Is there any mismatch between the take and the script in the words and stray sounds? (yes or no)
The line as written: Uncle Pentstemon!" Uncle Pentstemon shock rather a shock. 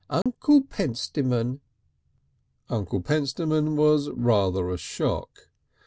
yes